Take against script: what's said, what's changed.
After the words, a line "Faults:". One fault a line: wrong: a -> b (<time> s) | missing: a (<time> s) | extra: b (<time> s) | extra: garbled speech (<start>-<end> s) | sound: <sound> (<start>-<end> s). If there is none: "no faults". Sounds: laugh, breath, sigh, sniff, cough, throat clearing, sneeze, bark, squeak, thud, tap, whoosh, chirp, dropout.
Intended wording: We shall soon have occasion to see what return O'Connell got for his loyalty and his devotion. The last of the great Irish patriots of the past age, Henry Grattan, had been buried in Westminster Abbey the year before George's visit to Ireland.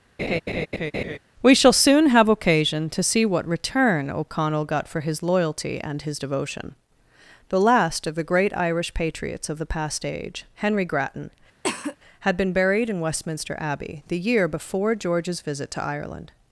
We shall soon have occasion to see what return O'Connell got for his loyalty and his devotion. The last of the great Irish patriots of the past age, Henry Grattan, had been buried in Westminster Abbey the year before George's visit to Ireland.
Faults:
sound: laugh (0.2-1.2 s)
sound: cough (11.6-12.0 s)